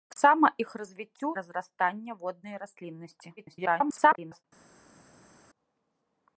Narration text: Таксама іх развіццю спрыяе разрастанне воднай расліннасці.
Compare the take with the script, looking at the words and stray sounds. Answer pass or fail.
fail